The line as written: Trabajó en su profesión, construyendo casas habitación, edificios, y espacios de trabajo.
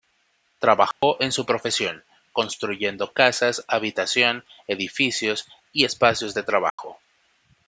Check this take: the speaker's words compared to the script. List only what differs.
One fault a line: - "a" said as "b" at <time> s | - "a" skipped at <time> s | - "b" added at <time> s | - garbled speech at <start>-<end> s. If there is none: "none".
none